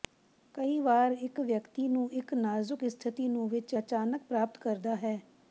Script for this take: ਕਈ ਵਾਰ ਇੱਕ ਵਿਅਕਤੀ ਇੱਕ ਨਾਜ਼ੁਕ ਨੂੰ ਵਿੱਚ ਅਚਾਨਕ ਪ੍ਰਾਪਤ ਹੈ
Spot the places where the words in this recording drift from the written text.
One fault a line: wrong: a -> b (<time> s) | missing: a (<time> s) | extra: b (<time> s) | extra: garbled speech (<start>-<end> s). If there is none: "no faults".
extra: ਨੂੰ (1.9 s)
extra: ਸਥਿਤੀ (2.9 s)
extra: ਕਰਦਾ (4.6 s)